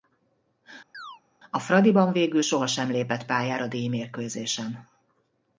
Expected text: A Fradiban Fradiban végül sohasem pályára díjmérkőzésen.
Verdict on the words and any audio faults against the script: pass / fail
fail